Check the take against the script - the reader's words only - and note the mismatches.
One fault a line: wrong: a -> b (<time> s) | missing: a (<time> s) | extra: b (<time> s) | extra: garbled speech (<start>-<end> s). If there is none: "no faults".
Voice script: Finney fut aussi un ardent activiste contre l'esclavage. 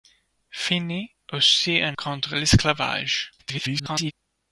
missing: fut (1.1 s)
missing: ardent activiste (2.0 s)
extra: garbled speech (3.4-4.1 s)